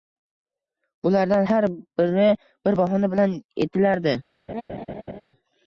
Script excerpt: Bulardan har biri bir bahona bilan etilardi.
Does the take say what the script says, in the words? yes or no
yes